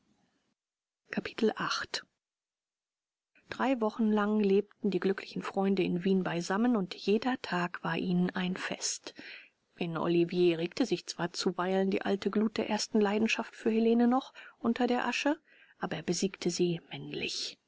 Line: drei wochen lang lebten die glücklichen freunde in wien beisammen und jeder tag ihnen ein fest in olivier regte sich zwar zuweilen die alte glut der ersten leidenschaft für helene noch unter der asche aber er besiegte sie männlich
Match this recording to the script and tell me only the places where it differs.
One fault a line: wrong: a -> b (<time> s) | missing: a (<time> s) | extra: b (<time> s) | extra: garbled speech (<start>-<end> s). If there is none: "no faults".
extra: war (7.8 s)